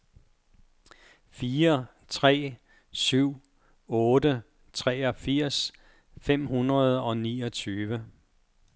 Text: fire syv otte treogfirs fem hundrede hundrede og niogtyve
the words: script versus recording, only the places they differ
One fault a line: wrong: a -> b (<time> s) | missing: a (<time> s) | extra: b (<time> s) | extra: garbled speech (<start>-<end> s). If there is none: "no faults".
extra: tre (2.1 s)
missing: hundrede (7.0 s)